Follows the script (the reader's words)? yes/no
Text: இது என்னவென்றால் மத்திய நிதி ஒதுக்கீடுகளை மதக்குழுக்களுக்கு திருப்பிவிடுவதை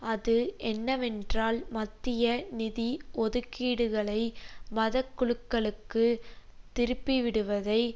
no